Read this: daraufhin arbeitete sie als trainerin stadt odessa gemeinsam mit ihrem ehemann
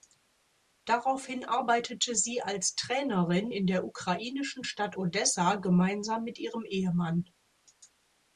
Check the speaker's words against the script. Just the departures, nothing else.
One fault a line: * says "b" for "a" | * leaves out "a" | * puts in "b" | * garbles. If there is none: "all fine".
* puts in "in der ukrainischen"